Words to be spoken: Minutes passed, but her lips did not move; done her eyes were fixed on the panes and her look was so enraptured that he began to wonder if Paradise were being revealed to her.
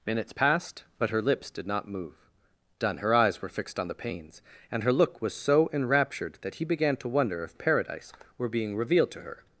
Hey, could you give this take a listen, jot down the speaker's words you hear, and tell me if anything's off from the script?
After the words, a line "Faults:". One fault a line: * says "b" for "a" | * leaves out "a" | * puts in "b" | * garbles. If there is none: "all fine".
Minutes passed, but her lips did not move; done her eyes were fixed on the panes and her look was so enraptured that he began to wonder if Paradise were being revealed to her.
Faults:
all fine